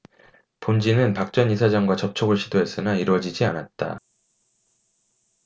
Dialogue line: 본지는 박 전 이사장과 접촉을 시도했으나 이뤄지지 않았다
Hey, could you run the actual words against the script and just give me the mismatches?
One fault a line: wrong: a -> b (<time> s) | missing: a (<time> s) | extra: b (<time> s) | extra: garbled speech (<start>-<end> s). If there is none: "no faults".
no faults